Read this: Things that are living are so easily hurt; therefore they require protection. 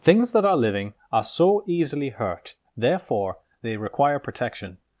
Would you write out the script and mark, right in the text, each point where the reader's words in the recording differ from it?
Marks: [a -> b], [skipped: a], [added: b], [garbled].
Things that are living are so easily hurt; therefore they require protection.